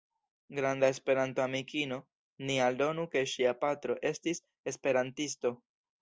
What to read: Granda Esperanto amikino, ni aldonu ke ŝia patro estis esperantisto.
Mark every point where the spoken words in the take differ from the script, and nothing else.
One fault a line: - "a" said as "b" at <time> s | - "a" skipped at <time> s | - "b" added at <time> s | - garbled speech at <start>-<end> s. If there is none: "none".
none